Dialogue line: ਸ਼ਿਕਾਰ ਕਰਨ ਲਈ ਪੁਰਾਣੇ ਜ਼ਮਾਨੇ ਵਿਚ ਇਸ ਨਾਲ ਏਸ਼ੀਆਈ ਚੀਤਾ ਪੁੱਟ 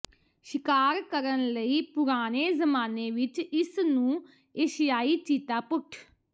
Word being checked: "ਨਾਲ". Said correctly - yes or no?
no